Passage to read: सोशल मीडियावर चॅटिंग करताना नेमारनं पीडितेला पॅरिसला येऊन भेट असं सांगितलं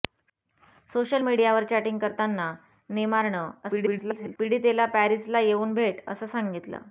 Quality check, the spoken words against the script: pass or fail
fail